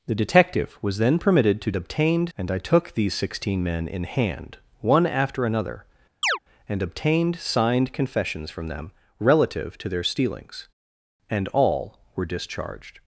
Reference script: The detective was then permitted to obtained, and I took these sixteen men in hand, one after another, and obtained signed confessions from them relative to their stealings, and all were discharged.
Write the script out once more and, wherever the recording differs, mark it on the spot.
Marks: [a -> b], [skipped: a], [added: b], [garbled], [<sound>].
The detective was then permitted to obtained, and I took these sixteen men in hand, one after another, [chirp] and obtained signed confessions from them relative to their stealings, and all were discharged.